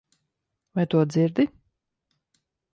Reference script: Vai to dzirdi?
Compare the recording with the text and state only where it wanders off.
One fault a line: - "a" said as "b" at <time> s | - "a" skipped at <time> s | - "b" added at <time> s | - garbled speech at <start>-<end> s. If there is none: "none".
none